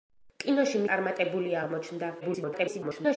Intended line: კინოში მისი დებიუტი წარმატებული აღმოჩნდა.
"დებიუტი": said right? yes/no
no